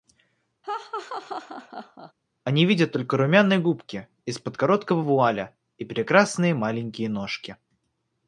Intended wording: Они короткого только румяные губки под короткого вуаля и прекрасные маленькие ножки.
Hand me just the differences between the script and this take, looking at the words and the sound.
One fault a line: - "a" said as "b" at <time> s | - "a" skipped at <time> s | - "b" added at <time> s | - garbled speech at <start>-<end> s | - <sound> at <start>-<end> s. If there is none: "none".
- laugh at 0.6-2.1 s
- "короткого" said as "видят" at 2.7 s
- "из" added at 4.3 s